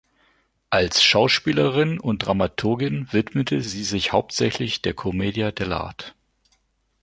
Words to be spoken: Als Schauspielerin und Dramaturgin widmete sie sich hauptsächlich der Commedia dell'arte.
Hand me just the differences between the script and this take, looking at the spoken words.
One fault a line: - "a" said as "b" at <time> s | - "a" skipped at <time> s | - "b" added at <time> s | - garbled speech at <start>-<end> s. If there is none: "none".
none